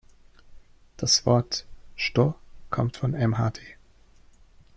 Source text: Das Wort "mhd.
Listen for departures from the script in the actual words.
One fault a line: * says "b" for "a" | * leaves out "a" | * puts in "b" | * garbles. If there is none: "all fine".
* puts in "sto kommt von"